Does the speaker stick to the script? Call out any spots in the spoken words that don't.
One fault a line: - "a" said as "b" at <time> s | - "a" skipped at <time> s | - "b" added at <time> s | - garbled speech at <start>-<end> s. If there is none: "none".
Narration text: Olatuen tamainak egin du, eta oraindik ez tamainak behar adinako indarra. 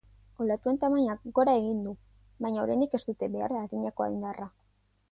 - "gora" added at 1.4 s
- "eta" said as "baina" at 2.5 s
- "tamainak" said as "dute" at 3.1 s